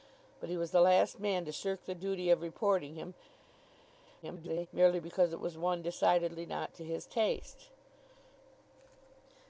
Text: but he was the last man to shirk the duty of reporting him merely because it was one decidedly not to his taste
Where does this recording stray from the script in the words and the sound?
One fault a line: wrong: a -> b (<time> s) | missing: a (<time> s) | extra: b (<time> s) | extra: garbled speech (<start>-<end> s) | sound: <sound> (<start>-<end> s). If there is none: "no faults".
extra: garbled speech (4.2-4.7 s)